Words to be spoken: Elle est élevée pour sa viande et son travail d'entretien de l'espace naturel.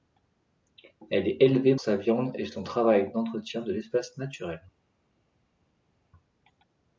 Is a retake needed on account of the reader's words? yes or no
yes